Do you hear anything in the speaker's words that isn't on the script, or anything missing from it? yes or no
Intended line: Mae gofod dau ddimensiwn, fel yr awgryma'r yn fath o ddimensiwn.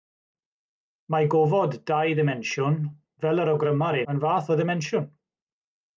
no